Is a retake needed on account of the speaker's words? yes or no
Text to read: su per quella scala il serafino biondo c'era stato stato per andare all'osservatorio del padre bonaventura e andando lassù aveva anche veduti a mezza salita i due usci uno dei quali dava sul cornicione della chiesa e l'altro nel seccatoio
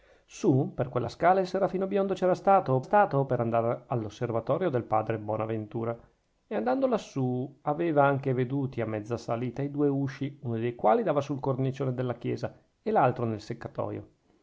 no